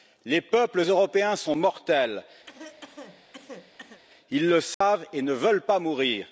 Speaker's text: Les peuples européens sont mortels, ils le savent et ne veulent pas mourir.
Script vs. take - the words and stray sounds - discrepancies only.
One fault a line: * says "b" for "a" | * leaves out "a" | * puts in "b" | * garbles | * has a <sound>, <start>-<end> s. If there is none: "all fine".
* has a cough, 2.5-4.0 s
* has a dropout, 4.7-4.8 s